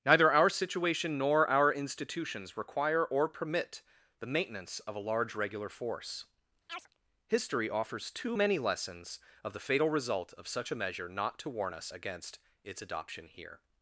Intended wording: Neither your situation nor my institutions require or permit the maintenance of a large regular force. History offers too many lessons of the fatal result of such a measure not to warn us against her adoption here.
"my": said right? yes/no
no